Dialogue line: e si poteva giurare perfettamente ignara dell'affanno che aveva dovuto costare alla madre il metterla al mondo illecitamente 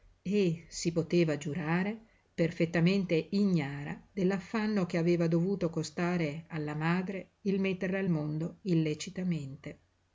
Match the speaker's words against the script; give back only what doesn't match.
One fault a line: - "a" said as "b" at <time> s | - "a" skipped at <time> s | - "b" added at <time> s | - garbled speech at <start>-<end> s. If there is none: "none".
none